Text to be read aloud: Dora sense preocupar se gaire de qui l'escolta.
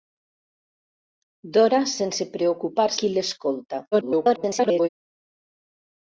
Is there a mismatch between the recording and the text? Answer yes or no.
yes